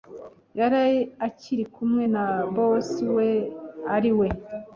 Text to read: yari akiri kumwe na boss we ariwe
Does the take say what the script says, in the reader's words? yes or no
yes